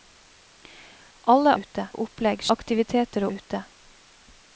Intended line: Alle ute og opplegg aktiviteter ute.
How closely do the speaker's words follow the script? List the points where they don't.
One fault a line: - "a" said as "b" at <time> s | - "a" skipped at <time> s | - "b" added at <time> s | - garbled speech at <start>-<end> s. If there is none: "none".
none